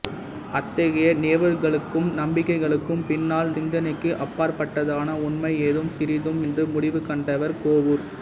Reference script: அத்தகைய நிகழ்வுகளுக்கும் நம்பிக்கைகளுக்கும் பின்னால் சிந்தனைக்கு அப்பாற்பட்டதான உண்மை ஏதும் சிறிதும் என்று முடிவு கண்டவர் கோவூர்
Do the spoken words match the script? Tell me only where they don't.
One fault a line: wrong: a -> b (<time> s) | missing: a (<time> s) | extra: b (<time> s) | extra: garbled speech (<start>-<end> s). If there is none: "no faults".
no faults